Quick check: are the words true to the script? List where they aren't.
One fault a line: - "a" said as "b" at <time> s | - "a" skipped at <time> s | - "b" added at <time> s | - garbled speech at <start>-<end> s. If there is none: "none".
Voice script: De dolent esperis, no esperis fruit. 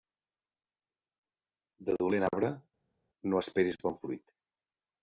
- "esperis" said as "arbre" at 2.3 s
- "bon" added at 3.9 s